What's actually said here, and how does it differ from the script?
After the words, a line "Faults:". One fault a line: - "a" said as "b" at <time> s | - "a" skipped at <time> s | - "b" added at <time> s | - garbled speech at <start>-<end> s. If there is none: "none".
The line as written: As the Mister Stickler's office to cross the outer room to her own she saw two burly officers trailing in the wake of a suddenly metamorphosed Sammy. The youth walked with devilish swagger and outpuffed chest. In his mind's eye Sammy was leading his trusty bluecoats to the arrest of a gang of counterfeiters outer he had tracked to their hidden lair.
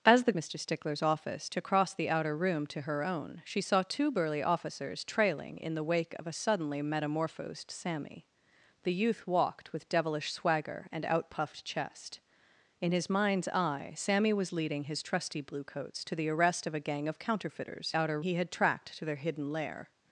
As the Mister Stickler's office to cross the outer room to her own she saw two burly officers trailing in the wake of a suddenly metamorphosed Sammy. The youth walked with devilish swagger and outpuffed chest. In his mind's eye Sammy was leading his trusty bluecoats to the arrest of a gang of counterfeiters outer he had tracked to their hidden lair.
Faults:
none